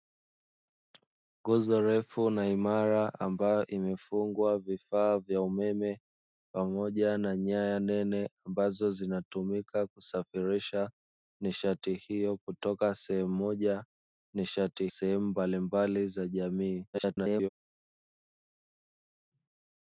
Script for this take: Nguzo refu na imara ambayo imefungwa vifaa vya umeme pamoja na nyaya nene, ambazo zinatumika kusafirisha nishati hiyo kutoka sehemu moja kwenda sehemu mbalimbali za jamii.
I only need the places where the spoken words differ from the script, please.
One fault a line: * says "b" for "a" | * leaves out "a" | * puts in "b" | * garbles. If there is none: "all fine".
* says "nishati" for "kwenda"
* garbles